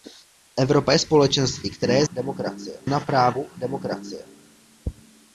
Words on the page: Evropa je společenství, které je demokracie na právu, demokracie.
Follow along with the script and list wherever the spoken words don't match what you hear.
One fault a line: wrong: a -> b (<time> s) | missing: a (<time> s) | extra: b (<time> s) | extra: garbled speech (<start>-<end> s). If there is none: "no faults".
no faults